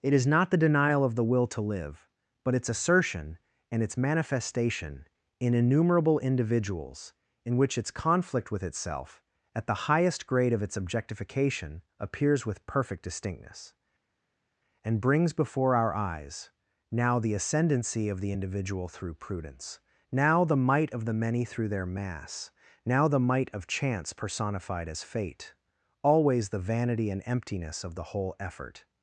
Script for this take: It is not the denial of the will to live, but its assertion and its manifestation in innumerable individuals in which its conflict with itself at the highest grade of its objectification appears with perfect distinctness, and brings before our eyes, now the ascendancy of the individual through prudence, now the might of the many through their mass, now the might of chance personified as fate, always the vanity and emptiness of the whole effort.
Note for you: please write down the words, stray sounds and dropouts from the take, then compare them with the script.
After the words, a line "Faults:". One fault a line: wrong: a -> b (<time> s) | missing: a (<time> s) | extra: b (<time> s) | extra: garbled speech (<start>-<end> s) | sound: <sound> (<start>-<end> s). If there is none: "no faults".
It is not the denial of the will to live, but its assertion and its manifestation in innumerable individuals in which its conflict with itself at the highest grade of its objectification appears with perfect distinctness, and brings before our eyes, now the ascendancy of the individual through prudence, now the might of the many through their mass, now the might of chance personified as fate, always the vanity and emptiness of the whole effort.
Faults:
no faults